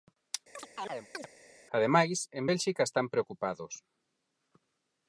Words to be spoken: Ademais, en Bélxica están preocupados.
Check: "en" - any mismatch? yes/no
no